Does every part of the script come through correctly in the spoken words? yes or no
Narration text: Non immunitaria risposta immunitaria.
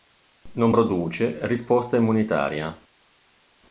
no